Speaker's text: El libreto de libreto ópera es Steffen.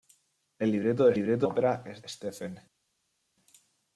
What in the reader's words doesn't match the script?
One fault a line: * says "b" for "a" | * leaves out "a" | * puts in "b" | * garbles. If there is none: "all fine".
all fine